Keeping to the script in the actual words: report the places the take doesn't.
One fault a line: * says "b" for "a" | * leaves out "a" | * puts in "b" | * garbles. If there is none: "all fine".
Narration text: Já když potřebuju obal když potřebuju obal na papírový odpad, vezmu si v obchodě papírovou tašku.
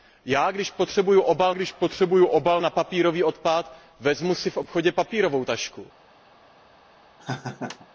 all fine